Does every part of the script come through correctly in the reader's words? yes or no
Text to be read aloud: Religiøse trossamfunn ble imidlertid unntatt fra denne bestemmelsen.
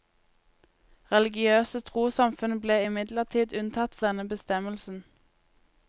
no